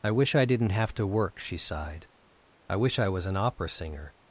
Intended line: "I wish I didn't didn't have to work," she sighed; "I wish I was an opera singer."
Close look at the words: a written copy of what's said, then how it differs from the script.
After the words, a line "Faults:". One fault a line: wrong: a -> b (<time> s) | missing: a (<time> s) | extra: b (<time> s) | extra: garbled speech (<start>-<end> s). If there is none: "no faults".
"I wish I didn't have to work," she sighed; "I wish I was an opera singer."
Faults:
missing: didn't (0.7 s)